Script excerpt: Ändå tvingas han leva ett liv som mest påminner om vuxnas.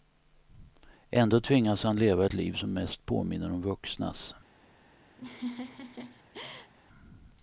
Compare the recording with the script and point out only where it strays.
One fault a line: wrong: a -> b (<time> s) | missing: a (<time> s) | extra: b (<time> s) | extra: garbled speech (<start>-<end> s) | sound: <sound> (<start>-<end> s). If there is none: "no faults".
sound: laugh (5.2-6.7 s)